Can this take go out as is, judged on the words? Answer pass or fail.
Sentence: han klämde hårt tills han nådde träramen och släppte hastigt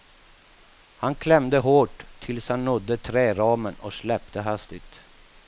pass